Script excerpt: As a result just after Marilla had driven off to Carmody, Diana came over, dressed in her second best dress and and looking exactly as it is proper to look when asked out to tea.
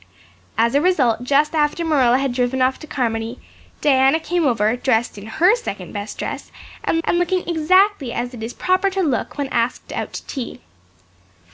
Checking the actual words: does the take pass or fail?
pass